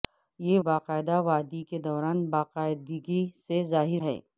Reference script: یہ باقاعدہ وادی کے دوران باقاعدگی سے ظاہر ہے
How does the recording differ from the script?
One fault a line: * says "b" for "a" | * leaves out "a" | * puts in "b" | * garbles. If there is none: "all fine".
all fine